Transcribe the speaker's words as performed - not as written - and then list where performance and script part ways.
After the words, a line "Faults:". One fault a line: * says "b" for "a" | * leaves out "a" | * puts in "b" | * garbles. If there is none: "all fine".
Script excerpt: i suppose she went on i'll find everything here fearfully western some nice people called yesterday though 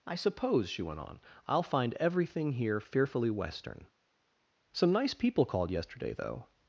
i suppose she went on i'll find everything here fearfully western some nice people called yesterday though
Faults:
all fine